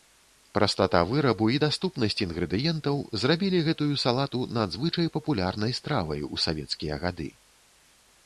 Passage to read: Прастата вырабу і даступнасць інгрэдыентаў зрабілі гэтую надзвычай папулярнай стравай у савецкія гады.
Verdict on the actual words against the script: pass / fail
fail